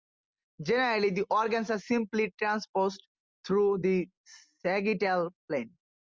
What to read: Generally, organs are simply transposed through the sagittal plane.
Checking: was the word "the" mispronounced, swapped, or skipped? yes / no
no